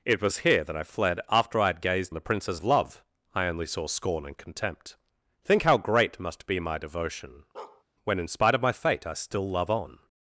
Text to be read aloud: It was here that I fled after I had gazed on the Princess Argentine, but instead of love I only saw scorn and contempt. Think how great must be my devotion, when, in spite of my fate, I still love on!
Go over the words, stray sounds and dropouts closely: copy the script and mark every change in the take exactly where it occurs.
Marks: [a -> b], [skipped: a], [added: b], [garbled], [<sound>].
It was here that I fled after I had gazed [skipped: on] the Princess [skipped: Argentine, but instead] of love I only saw scorn and contempt. Think how great must be my devotion, [bark] when, in spite of my fate, I still love on!